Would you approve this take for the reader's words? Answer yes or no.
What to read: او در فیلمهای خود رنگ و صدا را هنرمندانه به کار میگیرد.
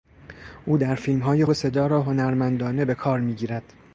no